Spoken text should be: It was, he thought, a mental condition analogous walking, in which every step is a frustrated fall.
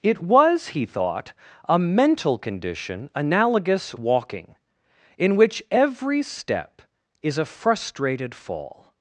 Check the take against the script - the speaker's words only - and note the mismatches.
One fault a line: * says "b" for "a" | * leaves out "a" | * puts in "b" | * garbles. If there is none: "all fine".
all fine